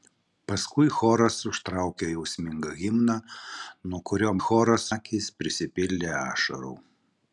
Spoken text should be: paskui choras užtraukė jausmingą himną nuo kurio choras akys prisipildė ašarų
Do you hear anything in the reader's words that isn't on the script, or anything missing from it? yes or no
no